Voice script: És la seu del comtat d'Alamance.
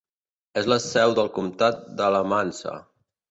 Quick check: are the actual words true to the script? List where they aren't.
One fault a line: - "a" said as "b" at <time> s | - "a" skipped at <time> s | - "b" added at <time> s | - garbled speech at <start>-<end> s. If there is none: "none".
none